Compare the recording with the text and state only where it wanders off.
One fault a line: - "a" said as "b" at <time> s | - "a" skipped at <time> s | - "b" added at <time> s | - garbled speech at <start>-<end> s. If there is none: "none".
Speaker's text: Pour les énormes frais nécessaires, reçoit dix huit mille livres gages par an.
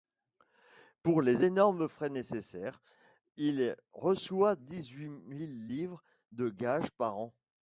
- "il" added at 3.4 s
- "de" added at 6.3 s